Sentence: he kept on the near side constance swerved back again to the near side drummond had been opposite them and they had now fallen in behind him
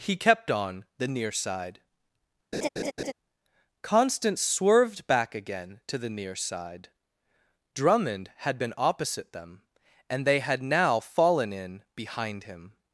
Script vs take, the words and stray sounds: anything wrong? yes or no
yes